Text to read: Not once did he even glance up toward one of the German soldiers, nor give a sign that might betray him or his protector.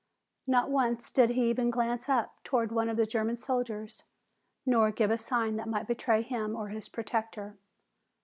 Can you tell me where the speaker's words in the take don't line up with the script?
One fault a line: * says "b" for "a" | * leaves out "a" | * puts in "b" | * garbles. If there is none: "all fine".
all fine